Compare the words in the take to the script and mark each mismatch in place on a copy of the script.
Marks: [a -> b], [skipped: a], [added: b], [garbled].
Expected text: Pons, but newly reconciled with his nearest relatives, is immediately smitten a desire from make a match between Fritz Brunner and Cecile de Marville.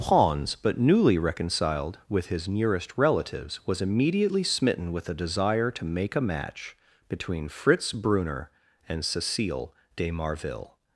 Pons, but newly reconciled with his nearest relatives, [is -> was] immediately smitten [added: with] a desire [from -> to] make a match between Fritz Brunner and Cecile de Marville.